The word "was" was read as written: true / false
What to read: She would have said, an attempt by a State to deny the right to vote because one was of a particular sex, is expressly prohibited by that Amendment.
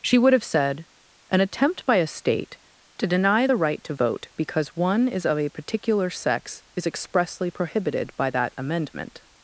false